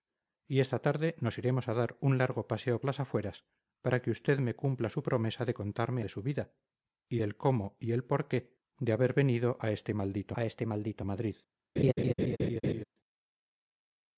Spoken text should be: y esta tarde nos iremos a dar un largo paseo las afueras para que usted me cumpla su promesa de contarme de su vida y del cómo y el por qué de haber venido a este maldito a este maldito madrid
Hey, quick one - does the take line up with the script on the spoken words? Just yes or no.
yes